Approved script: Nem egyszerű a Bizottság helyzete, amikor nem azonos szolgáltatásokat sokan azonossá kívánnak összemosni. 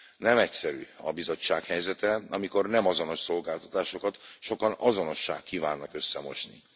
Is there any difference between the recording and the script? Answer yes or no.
no